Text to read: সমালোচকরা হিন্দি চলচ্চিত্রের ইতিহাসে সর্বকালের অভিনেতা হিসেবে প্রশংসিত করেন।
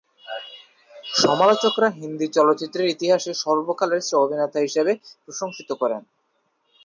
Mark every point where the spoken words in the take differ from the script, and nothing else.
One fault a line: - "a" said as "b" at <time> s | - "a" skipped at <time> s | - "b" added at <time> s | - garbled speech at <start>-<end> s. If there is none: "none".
none